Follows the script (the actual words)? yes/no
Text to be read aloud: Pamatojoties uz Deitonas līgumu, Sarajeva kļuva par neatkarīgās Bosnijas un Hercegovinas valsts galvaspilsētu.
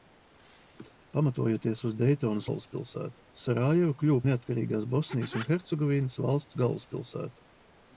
no